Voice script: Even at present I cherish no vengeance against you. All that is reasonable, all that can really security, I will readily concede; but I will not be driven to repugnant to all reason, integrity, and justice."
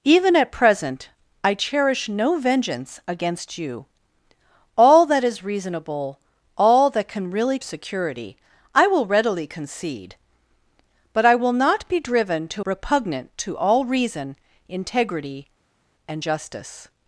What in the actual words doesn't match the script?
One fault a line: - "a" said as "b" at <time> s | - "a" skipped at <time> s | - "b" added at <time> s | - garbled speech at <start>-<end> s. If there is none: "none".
none